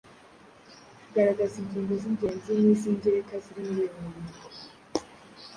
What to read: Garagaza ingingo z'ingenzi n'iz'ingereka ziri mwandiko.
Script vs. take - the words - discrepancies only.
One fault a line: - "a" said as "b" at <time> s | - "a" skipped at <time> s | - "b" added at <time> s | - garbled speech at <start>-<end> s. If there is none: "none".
- "muri uyu" added at 3.7 s